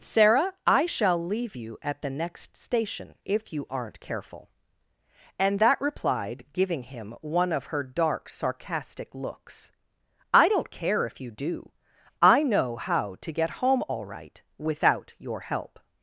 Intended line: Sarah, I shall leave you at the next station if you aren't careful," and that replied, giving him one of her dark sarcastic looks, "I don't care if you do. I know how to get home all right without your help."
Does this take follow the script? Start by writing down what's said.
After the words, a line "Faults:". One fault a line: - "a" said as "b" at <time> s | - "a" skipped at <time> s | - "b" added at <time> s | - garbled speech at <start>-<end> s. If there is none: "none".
Sarah, I shall leave you at the next station if you aren't careful," and that replied, giving him one of her dark sarcastic looks, "I don't care if you do. I know how to get home all right without your help."
Faults:
none